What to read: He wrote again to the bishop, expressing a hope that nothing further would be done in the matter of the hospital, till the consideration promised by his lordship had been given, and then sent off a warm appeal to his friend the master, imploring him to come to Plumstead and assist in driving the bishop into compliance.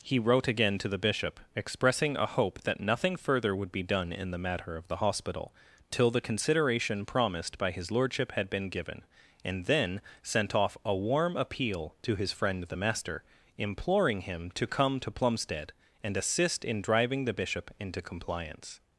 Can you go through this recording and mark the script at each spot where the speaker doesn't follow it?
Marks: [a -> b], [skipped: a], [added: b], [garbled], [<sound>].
He wrote again to the bishop, expressing a hope that nothing further would be done in the matter of the hospital, till the consideration promised by his lordship had been given, and then sent off a warm appeal to his friend the master, imploring him to come to Plumstead and assist in driving the bishop into compliance.